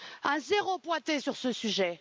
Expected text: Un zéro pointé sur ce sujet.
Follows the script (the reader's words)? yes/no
yes